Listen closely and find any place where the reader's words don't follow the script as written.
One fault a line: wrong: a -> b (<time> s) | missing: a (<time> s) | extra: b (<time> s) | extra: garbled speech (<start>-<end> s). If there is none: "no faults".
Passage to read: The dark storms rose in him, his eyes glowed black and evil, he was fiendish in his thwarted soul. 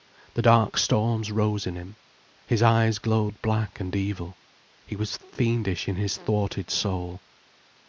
no faults